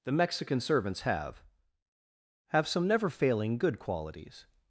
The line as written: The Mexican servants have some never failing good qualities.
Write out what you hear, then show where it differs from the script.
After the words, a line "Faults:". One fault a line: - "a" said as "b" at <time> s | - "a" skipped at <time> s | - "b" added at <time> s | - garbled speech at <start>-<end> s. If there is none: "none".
The Mexican servants have have some never failing good qualities.
Faults:
- "have" added at 2.5 s